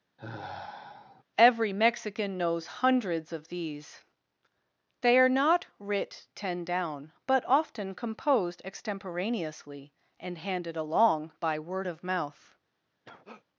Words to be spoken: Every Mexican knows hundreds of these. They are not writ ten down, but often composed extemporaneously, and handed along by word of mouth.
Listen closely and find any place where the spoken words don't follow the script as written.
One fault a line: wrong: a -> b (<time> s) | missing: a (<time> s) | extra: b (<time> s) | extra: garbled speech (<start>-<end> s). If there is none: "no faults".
no faults